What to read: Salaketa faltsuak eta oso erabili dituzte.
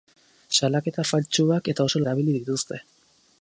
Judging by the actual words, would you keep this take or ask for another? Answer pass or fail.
pass